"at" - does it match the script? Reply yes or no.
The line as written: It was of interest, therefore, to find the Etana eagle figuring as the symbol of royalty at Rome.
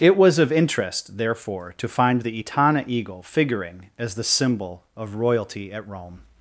yes